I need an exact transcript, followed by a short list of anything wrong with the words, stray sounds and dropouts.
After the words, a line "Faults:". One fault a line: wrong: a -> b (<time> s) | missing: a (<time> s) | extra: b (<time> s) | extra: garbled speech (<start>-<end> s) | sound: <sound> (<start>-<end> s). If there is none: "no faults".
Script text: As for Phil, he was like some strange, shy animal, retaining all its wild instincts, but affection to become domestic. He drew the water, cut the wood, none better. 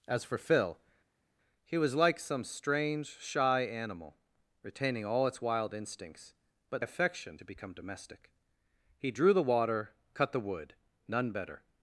As for Phil, he was like some strange, shy animal, retaining all its wild instincts, but affection to become domestic. He drew the water, cut the wood, none better.
Faults:
no faults